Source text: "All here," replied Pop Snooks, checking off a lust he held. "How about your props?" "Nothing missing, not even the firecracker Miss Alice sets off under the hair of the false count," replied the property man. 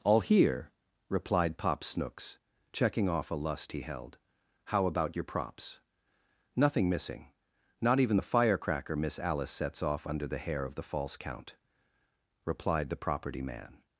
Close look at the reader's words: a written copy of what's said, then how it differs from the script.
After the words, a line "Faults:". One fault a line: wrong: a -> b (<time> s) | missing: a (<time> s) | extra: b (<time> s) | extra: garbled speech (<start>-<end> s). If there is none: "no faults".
"All here," replied Pop Snooks, checking off a lust he held. "How about your props?" "Nothing missing, not even the firecracker Miss Alice sets off under the hair of the false count," replied the property man.
Faults:
no faults